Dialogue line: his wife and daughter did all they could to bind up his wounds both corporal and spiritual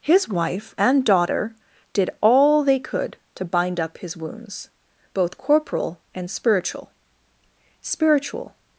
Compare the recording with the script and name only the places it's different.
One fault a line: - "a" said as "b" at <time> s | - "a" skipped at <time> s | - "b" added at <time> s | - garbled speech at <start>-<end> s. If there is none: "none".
- "spiritual" added at 7.8 s